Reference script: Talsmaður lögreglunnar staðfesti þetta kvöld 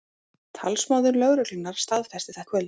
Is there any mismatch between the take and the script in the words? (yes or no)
no